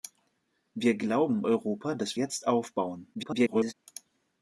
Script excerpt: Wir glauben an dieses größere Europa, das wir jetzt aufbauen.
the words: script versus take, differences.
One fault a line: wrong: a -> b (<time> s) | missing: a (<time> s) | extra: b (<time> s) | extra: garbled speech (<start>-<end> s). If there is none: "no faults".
missing: an dieses größere (1.4 s)
missing: wir (2.2 s)
extra: garbled speech (3.1-3.7 s)